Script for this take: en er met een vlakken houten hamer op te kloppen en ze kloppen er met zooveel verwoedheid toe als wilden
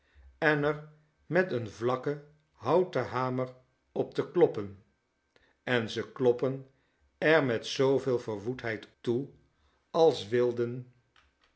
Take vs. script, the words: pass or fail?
pass